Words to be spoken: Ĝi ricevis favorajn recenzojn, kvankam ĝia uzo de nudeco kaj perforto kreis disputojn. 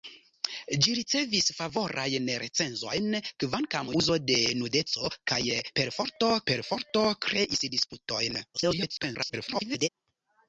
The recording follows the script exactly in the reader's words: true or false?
false